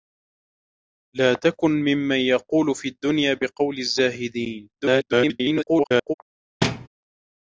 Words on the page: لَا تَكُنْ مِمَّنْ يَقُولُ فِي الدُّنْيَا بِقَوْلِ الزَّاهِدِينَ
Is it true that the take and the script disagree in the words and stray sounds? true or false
true